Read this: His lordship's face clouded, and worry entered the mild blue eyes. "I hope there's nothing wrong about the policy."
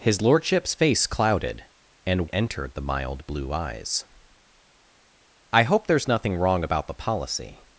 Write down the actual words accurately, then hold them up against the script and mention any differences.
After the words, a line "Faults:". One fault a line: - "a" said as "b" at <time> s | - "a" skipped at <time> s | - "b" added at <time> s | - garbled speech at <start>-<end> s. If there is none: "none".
His lordship's face clouded, and entered the mild blue eyes. "I hope there's nothing wrong about the policy."
Faults:
- "worry" skipped at 2.3 s